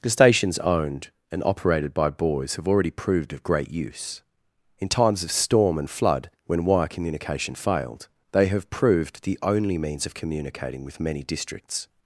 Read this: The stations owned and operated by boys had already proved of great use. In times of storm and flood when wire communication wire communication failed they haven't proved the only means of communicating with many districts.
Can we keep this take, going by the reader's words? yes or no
no